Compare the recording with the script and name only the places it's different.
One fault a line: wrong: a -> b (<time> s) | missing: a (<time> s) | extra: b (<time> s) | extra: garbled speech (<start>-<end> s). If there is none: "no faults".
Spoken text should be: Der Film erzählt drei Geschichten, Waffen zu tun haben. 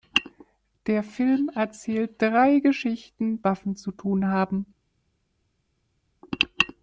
no faults